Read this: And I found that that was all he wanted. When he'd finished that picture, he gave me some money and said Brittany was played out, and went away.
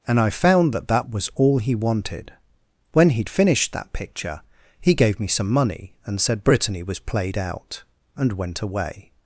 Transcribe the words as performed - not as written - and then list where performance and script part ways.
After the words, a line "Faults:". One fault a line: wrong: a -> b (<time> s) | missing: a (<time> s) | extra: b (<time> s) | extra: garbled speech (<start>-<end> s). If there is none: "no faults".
And I found that that was all he wanted. When he'd finished that picture, he gave me some money and said Brittany was played out, and went away.
Faults:
no faults